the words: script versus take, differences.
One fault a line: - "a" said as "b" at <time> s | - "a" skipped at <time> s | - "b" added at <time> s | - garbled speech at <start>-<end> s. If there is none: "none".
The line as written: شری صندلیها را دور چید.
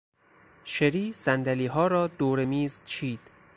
- "میز" added at 2.4 s